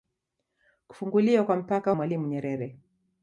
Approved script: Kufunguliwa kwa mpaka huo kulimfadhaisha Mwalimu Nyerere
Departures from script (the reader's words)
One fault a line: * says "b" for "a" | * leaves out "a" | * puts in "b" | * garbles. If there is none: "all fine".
* leaves out "huo kulimfadhaisha"